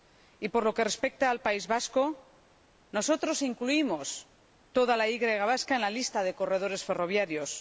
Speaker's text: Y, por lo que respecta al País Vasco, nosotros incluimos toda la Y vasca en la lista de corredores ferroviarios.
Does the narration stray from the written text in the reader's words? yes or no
no